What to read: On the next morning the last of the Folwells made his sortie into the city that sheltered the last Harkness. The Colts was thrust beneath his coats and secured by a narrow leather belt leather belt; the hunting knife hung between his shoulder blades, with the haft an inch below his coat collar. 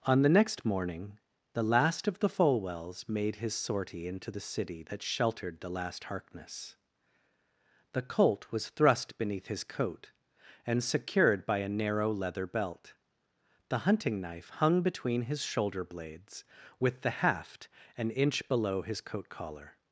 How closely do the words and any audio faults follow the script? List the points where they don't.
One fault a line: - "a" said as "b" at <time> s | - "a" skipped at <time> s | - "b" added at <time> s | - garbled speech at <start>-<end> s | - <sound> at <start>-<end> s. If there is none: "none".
- "Colts" said as "Colt" at 8.0 s
- "coats" said as "coat" at 9.6 s
- "leather belt" skipped at 12.9 s